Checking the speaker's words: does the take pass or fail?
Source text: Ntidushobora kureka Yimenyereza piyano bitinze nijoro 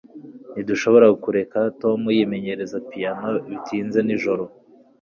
fail